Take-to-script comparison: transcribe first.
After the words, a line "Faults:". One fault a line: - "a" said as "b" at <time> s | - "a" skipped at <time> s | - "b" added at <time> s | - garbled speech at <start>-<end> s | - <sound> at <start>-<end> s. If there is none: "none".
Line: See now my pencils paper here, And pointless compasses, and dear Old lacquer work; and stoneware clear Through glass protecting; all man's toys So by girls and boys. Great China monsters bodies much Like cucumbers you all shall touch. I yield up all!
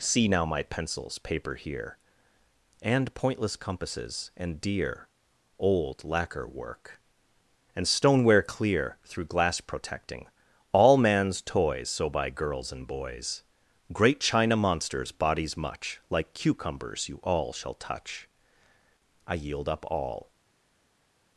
See now my pencils paper here, And pointless compasses, and dear Old lacquer work; and stoneware clear Through glass protecting; all man's toys So by girls and boys. Great China monsters bodies much Like cucumbers you all shall touch. I yield up all!
Faults:
none